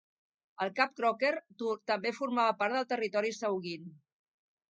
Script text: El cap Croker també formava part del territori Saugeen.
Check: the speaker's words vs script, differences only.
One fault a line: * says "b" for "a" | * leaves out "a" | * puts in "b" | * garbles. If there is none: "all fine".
all fine